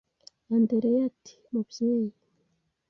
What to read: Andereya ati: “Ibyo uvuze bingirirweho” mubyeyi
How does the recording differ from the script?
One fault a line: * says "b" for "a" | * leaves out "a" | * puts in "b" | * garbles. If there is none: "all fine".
* leaves out "Ibyo uvuze bingirirweho"